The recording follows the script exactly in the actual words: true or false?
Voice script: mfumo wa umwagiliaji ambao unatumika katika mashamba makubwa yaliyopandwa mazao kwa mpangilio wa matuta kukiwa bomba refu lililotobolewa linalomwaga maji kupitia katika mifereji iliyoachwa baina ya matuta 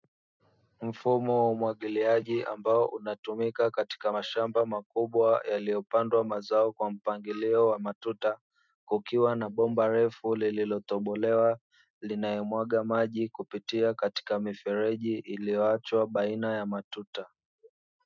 false